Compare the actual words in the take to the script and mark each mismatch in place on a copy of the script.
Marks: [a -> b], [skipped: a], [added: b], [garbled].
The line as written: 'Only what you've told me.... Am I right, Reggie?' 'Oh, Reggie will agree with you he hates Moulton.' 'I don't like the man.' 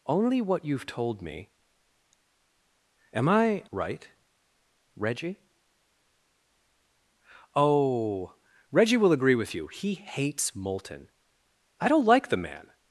'Only what you've told me.... Am I right, Reggie?' 'Oh, Reggie will agree with you he hates Moulton.' 'I don't like the man.'